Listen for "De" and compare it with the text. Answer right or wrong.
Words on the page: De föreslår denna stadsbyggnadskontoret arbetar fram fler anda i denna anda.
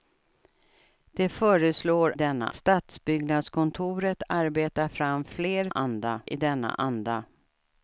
right